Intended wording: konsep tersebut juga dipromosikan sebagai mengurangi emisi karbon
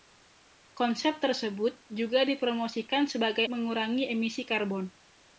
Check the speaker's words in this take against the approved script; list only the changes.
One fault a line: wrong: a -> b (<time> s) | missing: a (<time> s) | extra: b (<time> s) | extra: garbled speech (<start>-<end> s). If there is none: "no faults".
no faults